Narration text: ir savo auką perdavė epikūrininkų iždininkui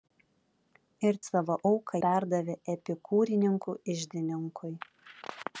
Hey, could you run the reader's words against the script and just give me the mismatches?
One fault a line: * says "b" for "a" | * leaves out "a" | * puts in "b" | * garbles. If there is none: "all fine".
all fine